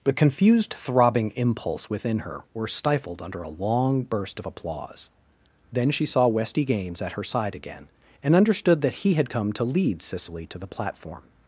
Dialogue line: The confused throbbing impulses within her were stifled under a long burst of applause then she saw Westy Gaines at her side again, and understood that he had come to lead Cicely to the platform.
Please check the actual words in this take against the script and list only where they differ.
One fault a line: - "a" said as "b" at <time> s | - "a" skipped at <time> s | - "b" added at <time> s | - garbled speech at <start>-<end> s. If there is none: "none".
- "impulses" said as "impulse" at 1.3 s